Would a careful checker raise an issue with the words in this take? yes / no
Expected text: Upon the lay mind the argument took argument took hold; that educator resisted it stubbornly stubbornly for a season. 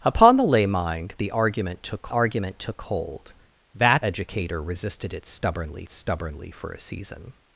no